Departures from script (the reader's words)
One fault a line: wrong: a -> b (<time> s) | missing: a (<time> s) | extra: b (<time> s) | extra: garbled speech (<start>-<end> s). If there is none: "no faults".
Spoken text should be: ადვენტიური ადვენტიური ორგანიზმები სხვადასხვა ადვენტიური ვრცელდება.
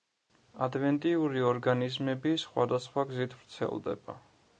missing: ადვენტიური (1.4 s)
wrong: ადვენტიური -> გზით (3.1 s)